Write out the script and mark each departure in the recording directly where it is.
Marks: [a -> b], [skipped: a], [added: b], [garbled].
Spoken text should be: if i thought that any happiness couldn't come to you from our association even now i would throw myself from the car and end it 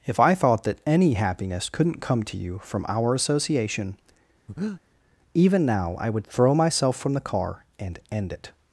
if i thought that any happiness couldn't come to you from our association even now i would throw myself from the car and end it